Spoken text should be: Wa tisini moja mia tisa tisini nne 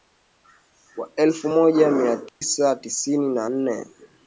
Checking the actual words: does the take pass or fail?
fail